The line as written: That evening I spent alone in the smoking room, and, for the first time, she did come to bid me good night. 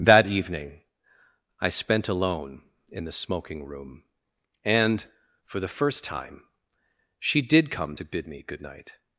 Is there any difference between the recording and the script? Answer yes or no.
no